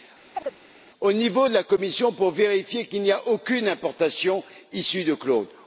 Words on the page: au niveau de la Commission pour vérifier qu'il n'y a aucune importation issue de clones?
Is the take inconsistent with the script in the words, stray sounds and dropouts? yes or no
yes